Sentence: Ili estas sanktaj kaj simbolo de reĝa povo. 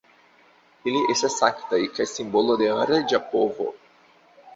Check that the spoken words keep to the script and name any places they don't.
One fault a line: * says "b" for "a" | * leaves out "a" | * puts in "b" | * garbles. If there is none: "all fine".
all fine